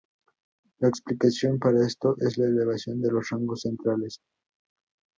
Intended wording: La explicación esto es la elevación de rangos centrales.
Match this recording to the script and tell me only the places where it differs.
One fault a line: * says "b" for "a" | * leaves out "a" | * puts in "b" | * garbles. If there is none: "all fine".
* puts in "para"
* puts in "los"